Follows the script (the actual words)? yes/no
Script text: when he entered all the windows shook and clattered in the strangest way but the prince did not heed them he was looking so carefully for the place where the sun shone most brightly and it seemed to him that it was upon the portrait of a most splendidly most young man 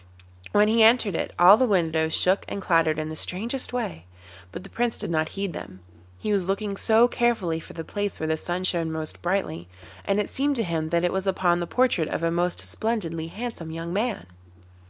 no